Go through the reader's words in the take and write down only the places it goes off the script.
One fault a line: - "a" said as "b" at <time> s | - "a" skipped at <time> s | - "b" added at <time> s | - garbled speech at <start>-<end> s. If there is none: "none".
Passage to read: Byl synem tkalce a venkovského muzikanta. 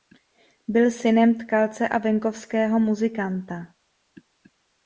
none